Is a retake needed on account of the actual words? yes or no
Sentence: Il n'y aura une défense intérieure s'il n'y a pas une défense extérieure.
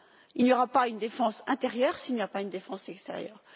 yes